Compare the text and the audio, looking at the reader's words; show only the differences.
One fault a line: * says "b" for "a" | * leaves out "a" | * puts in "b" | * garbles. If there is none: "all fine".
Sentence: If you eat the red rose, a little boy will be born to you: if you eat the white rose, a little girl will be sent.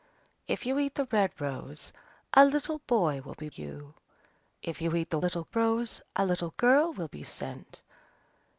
* leaves out "born to"
* says "little" for "white"